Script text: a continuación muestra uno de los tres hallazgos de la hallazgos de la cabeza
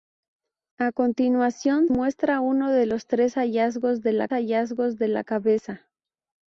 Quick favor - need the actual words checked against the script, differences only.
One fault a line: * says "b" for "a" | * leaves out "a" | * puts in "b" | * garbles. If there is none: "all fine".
all fine